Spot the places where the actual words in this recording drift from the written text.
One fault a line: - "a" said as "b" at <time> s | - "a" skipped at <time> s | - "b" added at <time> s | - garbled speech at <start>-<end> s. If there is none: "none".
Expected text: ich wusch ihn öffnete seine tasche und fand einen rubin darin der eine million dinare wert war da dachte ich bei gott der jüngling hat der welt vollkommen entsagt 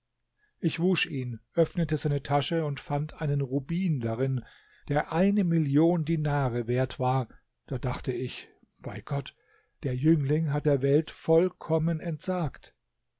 none